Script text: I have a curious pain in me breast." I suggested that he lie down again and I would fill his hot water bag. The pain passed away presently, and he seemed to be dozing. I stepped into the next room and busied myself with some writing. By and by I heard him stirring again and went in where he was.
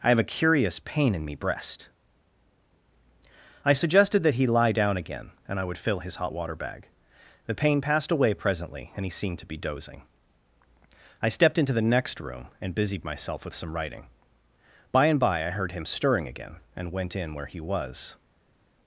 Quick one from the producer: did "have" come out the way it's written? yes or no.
yes